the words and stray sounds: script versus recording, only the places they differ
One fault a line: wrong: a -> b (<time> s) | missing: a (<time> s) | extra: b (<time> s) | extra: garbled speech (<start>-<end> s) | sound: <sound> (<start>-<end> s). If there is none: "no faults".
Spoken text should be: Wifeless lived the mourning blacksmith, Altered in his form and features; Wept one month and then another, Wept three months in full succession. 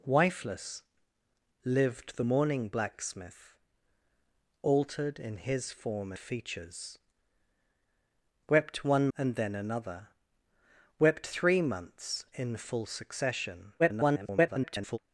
missing: and (6.1 s)
missing: month (9.1 s)
extra: garbled speech (13.8-15.0 s)